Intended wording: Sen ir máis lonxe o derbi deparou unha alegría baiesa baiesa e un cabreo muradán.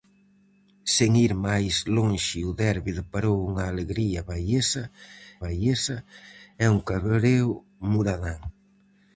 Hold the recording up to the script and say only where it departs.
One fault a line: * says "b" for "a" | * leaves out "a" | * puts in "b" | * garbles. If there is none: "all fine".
all fine